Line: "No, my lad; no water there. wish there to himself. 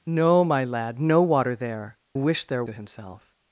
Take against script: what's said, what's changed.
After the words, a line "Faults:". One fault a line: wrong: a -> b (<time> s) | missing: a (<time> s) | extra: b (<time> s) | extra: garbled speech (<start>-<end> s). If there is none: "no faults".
"No, my lad; no water there. wish there to himself.
Faults:
no faults